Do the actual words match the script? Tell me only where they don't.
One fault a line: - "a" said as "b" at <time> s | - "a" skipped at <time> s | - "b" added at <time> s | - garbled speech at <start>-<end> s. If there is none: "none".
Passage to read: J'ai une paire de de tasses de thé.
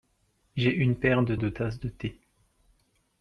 none